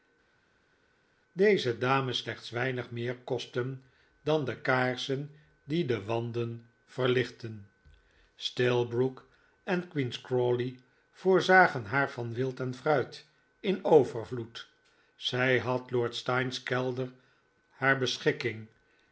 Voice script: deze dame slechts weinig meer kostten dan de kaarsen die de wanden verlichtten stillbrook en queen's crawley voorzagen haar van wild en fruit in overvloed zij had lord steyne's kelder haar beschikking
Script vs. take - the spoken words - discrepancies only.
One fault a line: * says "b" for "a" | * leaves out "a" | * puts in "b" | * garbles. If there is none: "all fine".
all fine